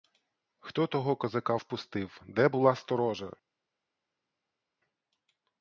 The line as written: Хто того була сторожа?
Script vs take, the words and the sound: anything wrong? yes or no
yes